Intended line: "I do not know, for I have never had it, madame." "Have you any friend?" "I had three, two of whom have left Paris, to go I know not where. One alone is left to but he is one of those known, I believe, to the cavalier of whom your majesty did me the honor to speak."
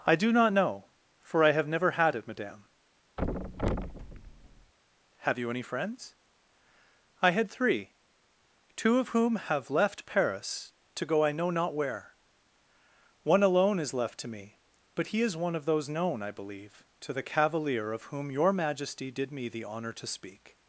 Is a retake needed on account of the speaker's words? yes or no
yes